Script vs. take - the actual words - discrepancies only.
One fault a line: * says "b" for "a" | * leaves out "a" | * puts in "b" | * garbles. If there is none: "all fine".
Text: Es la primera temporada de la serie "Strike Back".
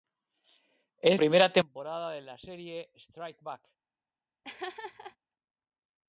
* leaves out "la"